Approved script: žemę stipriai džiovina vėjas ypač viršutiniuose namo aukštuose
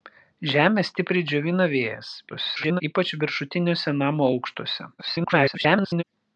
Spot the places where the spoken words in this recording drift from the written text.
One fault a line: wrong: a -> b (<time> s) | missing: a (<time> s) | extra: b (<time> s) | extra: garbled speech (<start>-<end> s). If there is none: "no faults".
extra: garbled speech (2.3-2.8 s)
extra: garbled speech (5.0-6.0 s)